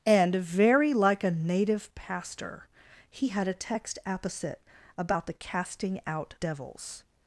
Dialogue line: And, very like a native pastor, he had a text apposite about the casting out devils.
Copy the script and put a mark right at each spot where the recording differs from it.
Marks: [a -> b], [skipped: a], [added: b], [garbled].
And, very like a native pastor, he had a text apposite about the casting out devils.